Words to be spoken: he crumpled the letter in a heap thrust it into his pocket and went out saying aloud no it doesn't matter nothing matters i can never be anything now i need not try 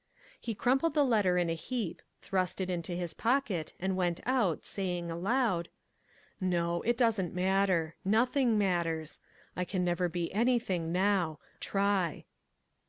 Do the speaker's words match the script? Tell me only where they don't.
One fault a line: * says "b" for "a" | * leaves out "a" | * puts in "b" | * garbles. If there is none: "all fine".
* leaves out "i need not"